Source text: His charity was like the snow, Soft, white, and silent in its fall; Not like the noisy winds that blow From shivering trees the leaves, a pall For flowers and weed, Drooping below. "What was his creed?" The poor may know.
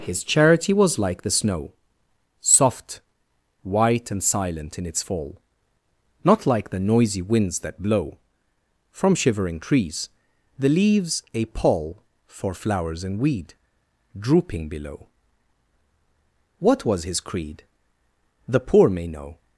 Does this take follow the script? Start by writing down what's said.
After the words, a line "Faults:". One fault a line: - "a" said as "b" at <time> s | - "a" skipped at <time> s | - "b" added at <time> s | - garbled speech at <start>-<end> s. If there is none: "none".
His charity was like the snow, Soft, white, and silent in its fall; Not like the noisy winds that blow From shivering trees the leaves, a pall For flowers and weed, Drooping below. "What was his creed?" The poor may know.
Faults:
none